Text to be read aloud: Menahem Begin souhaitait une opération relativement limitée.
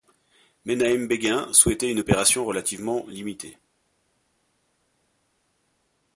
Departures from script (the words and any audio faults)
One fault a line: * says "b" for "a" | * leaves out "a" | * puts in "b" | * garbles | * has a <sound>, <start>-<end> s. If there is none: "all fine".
all fine